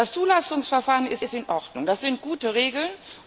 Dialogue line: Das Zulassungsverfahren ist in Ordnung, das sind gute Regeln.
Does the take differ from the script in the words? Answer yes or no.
yes